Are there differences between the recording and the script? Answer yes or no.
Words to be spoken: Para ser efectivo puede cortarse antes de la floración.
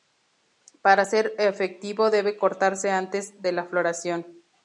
yes